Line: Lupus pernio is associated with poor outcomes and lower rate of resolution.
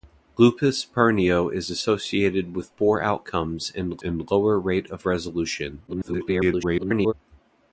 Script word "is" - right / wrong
right